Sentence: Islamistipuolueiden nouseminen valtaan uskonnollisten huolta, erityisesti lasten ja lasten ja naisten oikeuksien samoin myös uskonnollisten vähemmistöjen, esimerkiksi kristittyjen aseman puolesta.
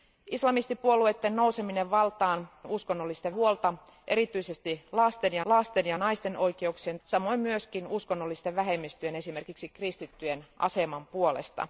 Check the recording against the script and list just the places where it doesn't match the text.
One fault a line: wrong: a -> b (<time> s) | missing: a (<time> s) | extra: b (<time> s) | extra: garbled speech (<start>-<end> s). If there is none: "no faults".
no faults